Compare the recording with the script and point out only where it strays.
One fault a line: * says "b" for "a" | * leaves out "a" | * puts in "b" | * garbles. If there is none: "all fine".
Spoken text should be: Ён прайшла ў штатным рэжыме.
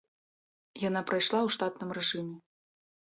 * says "Яна" for "Ён"